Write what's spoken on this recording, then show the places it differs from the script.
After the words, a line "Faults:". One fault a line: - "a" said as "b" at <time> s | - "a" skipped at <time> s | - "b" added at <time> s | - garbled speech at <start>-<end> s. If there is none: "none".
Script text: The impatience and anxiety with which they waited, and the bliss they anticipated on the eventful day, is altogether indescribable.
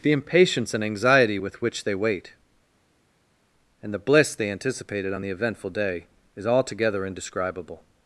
The impatience and anxiety with which they wait, and the bliss they anticipated on the eventful day, is altogether indescribable.
Faults:
- "waited" said as "wait" at 1.9 s